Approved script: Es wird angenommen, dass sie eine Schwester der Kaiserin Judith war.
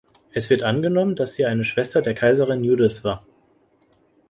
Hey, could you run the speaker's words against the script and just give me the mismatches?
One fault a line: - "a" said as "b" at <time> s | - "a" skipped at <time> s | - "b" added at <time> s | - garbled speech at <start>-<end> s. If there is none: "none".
none